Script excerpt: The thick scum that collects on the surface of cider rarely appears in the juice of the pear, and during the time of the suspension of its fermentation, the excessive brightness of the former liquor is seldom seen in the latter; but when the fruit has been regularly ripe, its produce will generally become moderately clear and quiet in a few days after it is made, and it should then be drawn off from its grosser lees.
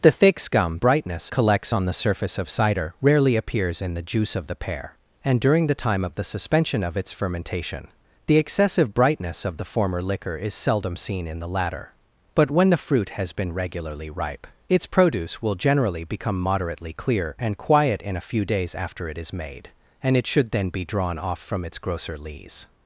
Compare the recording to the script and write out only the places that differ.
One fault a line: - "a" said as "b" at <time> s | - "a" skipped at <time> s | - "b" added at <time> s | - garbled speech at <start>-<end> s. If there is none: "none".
- "that" said as "brightness" at 0.8 s